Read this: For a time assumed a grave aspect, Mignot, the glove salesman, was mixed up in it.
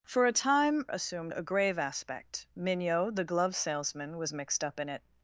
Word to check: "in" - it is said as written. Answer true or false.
true